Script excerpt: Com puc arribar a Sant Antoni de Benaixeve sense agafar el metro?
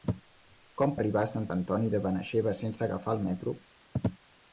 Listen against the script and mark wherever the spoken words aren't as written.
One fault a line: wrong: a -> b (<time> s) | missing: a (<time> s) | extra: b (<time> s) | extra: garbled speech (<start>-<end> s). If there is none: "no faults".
missing: puc (0.9 s)